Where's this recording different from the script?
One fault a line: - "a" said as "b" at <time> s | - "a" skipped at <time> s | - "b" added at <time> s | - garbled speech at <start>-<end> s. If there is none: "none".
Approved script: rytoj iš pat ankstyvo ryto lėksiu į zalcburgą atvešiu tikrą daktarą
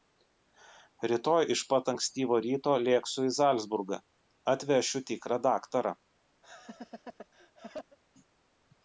none